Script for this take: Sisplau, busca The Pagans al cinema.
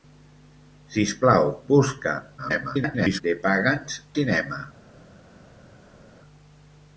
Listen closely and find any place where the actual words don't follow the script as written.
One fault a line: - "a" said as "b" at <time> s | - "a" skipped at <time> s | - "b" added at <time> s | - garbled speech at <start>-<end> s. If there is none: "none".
- garbled speech at 2.4-3.2 s
- "al" skipped at 4.0 s